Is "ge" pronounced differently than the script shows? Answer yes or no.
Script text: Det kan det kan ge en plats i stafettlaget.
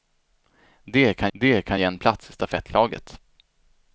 no